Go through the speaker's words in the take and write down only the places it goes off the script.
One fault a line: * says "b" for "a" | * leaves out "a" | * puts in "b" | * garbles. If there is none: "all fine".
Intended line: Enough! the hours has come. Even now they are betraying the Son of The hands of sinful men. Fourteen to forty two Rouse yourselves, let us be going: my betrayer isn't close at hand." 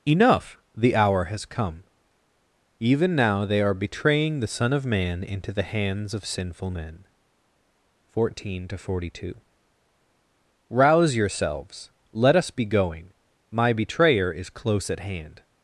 * says "hour" for "hours"
* puts in "Man into"
* says "is" for "isn't"